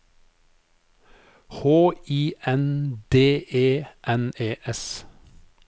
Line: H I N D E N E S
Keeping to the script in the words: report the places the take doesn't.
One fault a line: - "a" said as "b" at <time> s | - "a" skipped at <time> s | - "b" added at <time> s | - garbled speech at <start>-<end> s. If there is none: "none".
none